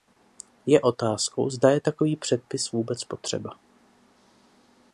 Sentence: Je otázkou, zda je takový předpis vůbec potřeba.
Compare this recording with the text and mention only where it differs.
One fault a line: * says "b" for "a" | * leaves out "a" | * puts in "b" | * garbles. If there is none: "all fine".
all fine